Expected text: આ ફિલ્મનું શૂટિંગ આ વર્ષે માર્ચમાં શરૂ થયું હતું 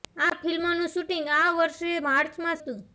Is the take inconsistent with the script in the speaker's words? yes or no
yes